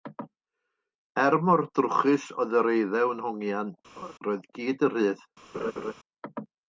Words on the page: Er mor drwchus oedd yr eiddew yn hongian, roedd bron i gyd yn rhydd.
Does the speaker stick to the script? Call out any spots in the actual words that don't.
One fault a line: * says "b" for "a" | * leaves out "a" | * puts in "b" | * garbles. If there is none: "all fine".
* leaves out "bron"